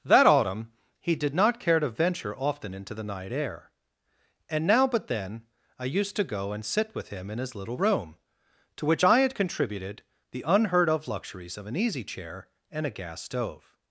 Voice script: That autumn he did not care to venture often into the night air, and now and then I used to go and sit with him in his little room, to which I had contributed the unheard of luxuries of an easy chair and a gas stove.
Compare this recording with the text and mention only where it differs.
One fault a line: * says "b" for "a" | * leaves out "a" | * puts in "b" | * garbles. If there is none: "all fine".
* says "but" for "and"